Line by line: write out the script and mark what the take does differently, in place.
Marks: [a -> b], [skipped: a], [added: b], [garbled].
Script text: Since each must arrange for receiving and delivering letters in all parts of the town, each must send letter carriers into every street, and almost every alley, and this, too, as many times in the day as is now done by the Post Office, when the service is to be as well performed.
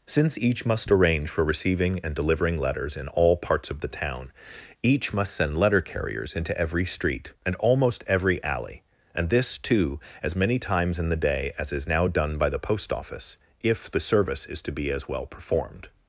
Since each must arrange for receiving and delivering letters in all parts of the town, each must send letter carriers into every street, and almost every alley, and this, too, as many times in the day as is now done by the Post Office, [when -> if] the service is to be as well performed.